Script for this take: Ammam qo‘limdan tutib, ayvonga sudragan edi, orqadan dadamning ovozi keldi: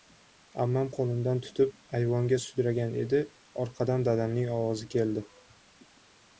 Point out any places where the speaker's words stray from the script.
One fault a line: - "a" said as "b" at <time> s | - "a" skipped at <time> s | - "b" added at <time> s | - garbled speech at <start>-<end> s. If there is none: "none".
none